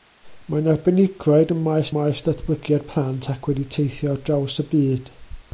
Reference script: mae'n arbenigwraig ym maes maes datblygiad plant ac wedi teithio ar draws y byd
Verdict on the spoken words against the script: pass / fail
pass